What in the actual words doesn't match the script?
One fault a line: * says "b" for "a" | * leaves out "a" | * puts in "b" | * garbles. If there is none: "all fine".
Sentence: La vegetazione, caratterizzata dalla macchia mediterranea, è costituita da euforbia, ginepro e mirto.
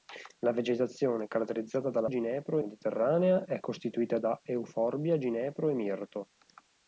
* says "ginepro" for "macchia"